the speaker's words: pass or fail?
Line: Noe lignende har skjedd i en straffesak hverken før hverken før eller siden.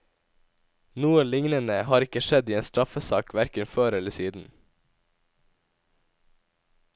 fail